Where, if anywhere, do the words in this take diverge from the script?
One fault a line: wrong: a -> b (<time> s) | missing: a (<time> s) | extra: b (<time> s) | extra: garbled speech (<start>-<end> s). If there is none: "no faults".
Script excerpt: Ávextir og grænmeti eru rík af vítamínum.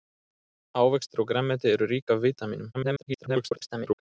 extra: garbled speech (2.7-4.0 s)